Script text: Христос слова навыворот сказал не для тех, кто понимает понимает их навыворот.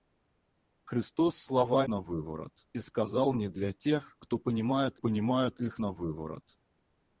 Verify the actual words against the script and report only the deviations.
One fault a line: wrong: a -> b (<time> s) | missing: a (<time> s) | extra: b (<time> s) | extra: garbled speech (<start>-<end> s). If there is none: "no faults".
no faults